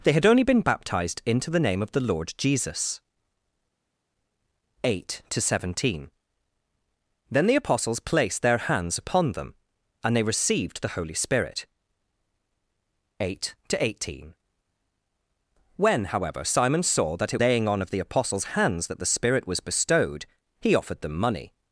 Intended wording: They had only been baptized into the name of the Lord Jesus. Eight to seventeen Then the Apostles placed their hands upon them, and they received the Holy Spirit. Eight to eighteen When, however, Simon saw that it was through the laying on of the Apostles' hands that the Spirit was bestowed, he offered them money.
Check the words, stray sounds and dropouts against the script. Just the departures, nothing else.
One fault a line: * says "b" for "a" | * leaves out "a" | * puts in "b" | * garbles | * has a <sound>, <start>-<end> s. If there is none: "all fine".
* leaves out "was through the"